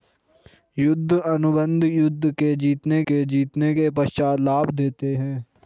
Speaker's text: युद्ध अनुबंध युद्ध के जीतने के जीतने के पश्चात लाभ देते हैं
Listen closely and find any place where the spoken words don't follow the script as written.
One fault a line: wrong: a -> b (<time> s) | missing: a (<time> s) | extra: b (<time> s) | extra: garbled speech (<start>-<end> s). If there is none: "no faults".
no faults